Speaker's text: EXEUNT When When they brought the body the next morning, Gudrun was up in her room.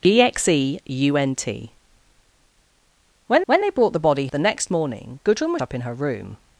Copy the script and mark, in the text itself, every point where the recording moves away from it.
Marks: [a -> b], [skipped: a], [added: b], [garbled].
EXEUNT When When they brought the body the next morning, Gudrun was up in her room.